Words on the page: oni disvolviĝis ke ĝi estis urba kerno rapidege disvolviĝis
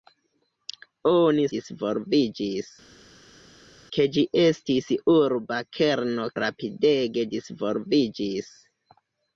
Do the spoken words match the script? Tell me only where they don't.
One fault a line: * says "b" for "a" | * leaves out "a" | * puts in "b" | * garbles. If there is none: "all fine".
all fine